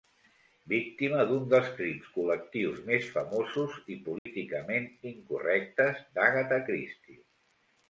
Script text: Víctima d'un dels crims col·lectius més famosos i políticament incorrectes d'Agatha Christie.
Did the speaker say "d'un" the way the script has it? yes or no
yes